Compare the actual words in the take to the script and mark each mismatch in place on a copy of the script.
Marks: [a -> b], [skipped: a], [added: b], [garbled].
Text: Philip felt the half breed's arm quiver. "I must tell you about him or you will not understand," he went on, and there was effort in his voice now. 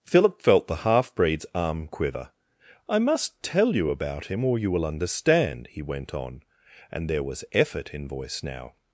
Philip felt the half breed's arm quiver. "I must tell you about him or you will [skipped: not] understand," he went on, and there was effort in [skipped: his] voice now.